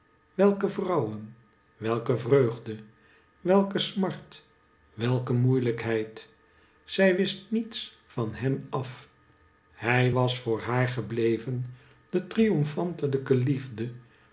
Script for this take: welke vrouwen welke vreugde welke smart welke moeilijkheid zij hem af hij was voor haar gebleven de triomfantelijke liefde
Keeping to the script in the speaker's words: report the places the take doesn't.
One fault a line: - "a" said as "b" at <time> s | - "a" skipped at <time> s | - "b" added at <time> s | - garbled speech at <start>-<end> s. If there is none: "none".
- "wist niets van" added at 7.2 s